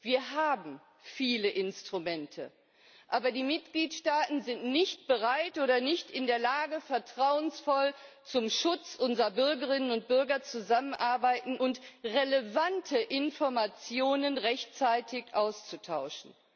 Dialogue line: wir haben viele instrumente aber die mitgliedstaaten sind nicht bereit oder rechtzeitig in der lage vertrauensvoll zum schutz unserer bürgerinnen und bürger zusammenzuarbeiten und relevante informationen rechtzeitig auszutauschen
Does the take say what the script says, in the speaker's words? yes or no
no